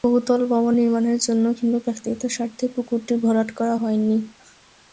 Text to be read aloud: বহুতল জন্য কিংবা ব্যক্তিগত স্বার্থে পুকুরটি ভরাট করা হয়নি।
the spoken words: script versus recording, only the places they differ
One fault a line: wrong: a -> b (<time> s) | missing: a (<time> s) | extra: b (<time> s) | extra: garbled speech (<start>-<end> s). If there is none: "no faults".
extra: ভবন নির্মাণের (0.5 s)